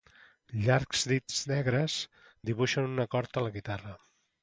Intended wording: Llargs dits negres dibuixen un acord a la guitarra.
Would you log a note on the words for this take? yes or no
no